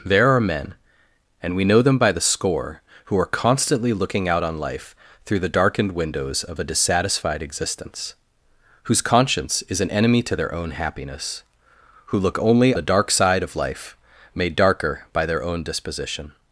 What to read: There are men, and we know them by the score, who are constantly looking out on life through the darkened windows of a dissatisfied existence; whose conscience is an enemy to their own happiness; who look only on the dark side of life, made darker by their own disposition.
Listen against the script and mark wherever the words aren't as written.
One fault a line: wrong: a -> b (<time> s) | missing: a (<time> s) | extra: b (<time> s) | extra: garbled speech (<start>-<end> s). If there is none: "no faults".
missing: on (12.7 s)